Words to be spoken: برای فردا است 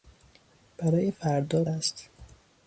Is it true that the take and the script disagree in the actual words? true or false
false